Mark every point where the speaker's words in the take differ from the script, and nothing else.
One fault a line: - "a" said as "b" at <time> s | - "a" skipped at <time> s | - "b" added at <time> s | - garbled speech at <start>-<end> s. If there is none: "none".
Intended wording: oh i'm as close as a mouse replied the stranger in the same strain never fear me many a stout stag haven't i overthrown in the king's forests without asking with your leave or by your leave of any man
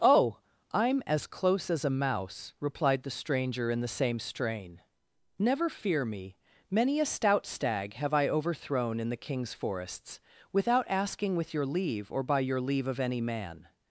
- "haven't" said as "have" at 7.9 s